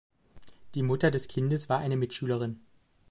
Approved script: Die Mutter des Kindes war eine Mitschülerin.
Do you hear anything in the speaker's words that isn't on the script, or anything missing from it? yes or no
no